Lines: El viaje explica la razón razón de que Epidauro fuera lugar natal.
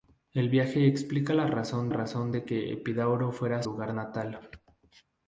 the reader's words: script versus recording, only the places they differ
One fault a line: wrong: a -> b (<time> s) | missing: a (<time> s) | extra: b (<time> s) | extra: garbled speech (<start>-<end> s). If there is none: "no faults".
no faults